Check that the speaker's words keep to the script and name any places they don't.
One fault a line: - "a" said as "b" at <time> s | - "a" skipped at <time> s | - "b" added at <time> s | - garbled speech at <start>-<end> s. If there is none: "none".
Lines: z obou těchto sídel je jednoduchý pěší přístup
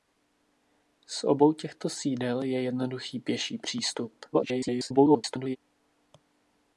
- garbled speech at 4.3-5.6 s